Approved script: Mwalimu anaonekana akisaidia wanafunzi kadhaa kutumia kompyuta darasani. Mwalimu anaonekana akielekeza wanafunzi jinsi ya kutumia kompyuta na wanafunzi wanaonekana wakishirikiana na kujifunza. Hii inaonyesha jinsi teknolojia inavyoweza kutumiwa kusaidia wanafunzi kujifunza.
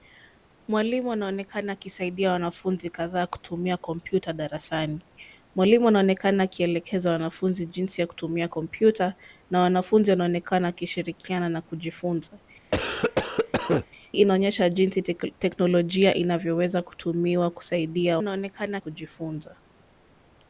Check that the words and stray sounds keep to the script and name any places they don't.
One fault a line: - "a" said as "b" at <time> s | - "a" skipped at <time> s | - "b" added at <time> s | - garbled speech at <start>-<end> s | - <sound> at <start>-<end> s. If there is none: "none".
- "Hii" skipped at 12.4 s
- cough at 12.7-13.9 s
- "wanafunzi" said as "anaonekana" at 18.2 s